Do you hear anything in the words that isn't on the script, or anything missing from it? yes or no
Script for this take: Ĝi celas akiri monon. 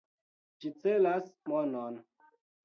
yes